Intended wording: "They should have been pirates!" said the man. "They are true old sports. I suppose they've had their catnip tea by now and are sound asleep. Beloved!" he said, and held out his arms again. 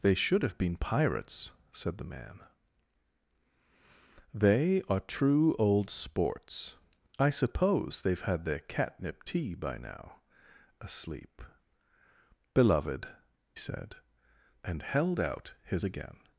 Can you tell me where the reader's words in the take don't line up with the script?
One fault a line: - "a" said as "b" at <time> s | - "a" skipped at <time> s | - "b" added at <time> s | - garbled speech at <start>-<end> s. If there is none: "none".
- "and are sound" skipped at 10.2 s
- "he" skipped at 13.1 s
- "arms" skipped at 15.8 s